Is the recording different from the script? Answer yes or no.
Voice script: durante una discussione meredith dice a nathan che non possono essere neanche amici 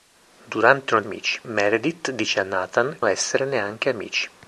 yes